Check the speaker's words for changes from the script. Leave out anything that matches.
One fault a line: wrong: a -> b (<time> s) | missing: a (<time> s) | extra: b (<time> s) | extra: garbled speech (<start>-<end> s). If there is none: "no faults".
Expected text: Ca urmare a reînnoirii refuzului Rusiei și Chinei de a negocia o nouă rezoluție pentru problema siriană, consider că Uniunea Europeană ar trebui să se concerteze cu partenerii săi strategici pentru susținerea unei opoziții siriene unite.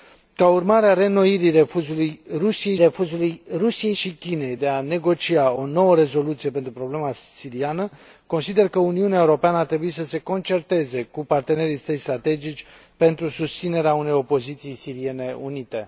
extra: refuzului Rusiei (2.7 s)